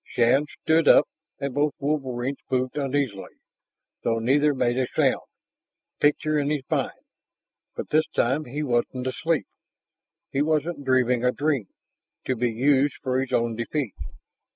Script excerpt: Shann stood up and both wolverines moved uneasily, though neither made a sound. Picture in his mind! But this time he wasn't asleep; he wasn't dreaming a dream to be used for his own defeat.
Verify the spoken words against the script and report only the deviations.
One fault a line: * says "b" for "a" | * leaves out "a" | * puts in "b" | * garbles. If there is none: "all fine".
all fine